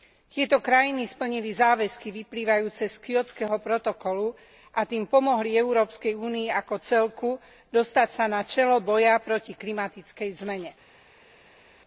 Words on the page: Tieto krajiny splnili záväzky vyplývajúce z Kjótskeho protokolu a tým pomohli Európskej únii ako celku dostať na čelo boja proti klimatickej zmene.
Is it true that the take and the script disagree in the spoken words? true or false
true